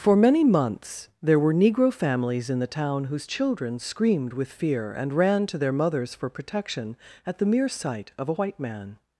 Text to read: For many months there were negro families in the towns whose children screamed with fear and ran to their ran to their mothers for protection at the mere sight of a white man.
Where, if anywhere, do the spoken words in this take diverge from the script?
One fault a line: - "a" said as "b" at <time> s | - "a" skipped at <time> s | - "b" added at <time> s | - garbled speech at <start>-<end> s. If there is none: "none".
- "towns" said as "town" at 2.6 s
- "ran to their" skipped at 5.7 s